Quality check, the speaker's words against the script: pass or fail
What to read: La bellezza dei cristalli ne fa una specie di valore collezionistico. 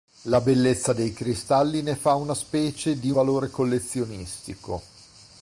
pass